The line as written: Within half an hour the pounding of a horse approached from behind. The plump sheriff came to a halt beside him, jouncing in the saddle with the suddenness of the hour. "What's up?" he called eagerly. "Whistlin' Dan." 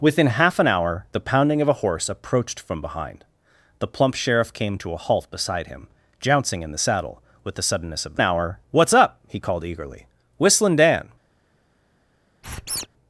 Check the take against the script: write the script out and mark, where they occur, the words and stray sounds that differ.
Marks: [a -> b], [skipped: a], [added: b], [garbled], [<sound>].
Within half an hour the pounding of a horse approached from behind. The plump sheriff came to a halt beside him, jouncing in the saddle with the suddenness of the hour. "What's up?" he called eagerly. "Whistlin' Dan." [squeak]